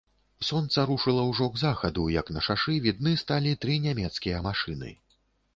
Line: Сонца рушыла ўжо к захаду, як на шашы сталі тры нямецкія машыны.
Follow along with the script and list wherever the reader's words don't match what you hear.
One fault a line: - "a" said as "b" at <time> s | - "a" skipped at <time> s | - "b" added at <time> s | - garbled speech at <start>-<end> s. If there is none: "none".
- "відны" added at 2.9 s